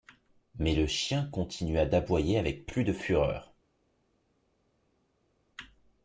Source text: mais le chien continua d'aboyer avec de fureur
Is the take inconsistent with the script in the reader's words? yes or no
yes